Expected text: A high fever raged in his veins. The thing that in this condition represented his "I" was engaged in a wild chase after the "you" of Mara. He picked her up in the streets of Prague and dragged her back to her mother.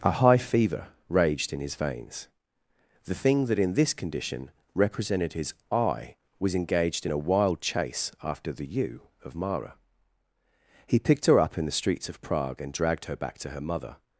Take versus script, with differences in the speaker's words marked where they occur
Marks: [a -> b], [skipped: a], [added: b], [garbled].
A high fever raged in his veins. The thing that in this condition represented his "I" was engaged in a wild chase after the "you" of Mara. He picked her up in the streets of Prague and dragged her back to her mother.